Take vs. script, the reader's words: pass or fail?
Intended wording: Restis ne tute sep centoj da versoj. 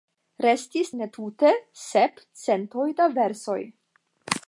pass